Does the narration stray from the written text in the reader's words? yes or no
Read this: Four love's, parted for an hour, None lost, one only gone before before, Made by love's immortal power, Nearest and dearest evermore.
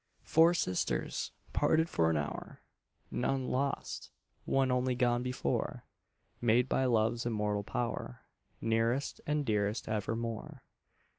yes